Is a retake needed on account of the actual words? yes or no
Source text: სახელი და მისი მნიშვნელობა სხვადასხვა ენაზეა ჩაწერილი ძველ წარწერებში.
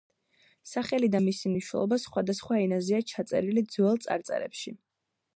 no